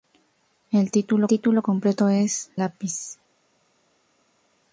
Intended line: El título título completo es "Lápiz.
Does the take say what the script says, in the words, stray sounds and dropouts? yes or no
yes